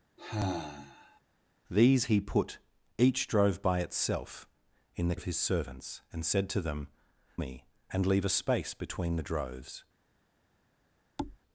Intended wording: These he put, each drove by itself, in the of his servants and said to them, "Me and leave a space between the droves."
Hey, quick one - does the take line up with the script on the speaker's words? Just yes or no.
yes